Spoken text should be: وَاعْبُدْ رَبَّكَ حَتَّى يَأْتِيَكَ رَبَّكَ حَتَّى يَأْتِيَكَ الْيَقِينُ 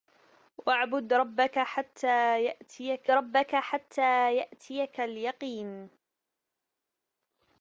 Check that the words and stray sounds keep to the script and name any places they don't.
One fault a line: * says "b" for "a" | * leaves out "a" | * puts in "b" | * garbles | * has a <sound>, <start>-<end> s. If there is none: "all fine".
all fine